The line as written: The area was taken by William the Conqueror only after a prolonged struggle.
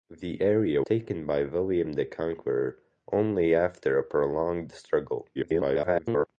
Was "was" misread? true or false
true